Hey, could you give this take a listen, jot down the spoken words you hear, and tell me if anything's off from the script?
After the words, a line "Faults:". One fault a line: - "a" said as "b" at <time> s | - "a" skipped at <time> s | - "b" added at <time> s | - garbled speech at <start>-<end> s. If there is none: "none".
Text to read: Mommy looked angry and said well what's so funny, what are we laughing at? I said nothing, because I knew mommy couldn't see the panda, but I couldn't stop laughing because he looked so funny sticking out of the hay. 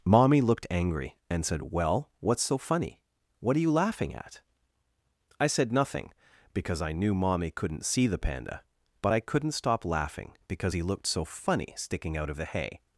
Mommy looked angry and said well what's so funny, what are you laughing at? I said nothing, because I knew mommy couldn't see the panda, but I couldn't stop laughing because he looked so funny sticking out of the hay.
Faults:
- "we" said as "you" at 3.6 s